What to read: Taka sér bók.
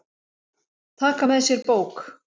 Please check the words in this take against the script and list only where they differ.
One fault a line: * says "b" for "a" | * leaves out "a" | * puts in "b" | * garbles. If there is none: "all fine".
* puts in "með"